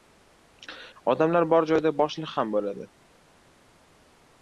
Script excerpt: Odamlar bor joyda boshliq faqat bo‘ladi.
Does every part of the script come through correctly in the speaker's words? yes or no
no